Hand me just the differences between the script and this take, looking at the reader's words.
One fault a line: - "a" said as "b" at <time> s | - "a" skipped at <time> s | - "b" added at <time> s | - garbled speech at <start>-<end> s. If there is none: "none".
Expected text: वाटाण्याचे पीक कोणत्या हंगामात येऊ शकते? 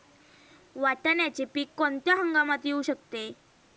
none